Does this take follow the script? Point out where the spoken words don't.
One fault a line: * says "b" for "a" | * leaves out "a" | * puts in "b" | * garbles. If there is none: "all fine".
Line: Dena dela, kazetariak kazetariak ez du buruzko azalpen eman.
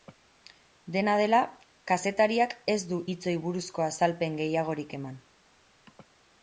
* leaves out "kazetariak"
* puts in "hitzoi"
* puts in "gehiagorik"